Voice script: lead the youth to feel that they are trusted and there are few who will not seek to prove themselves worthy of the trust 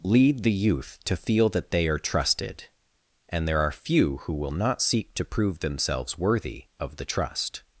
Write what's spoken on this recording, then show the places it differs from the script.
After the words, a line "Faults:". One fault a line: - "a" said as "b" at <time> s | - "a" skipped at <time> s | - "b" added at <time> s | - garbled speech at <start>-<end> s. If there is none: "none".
lead the youth to feel that they are trusted and there are few who will not seek to prove themselves worthy of the trust
Faults:
none